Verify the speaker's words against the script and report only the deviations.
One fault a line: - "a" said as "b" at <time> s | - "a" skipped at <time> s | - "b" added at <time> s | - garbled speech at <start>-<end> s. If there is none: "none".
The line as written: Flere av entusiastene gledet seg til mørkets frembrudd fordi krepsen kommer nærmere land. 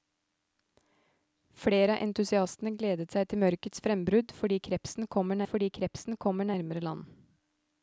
- "fordi krepsen kommer" added at 5.5 s